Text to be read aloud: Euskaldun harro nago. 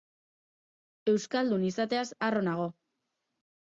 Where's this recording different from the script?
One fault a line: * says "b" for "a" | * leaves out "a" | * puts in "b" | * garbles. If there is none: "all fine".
* puts in "izateaz"